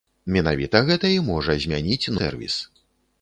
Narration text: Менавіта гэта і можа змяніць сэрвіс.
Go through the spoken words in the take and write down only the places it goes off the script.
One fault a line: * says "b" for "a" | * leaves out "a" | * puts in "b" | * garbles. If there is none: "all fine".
all fine